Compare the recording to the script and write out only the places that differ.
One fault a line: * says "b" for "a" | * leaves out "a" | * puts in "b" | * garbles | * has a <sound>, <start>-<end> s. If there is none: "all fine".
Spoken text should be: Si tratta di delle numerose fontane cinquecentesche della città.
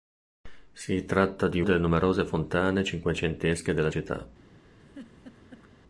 * has a laugh, 4.8-5.7 s